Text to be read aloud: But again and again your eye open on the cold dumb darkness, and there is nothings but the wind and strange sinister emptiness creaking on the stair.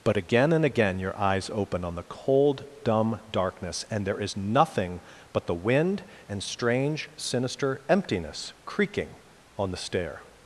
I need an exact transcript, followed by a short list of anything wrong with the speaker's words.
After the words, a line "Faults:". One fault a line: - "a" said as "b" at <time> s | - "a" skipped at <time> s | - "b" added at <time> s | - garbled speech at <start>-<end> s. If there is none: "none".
But again and again your eyes open on the cold dumb darkness, and there is nothing but the wind and strange sinister emptiness creaking on the stair.
Faults:
- "eye" said as "eyes" at 1.2 s
- "nothings" said as "nothing" at 4.3 s